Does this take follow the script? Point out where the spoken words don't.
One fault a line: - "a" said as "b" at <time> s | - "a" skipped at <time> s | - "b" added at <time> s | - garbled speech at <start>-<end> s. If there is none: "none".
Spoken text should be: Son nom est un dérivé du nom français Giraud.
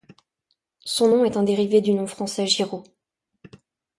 none